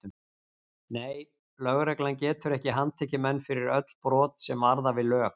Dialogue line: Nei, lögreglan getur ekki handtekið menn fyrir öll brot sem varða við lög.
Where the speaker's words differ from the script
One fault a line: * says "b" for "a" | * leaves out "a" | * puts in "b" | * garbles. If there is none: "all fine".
all fine